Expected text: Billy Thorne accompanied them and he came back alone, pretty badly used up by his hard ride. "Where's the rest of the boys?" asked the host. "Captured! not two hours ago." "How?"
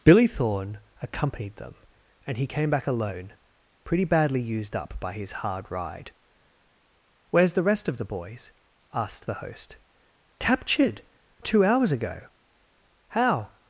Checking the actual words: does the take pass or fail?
fail